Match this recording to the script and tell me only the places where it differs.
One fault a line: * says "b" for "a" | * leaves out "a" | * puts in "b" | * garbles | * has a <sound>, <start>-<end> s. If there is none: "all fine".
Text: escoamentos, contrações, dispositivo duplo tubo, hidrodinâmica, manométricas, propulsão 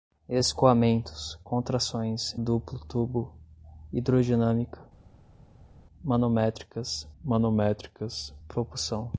* leaves out "dispositivo"
* puts in "manométricas"